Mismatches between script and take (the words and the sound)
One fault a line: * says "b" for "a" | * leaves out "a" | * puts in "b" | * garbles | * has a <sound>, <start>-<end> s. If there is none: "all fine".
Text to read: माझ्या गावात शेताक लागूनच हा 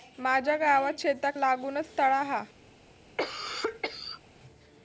* puts in "तळा"
* has a cough, 3.2-4.2 s